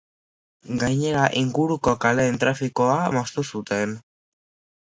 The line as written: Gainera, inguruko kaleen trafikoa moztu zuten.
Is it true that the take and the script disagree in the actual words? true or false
false